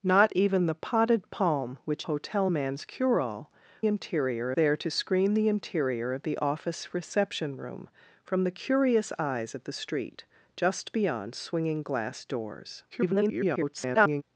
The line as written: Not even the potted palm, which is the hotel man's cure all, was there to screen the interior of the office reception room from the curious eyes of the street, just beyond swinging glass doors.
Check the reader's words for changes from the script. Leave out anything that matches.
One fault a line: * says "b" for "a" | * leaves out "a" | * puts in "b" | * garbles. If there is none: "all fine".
* leaves out "is the"
* says "interior" for "was"
* garbles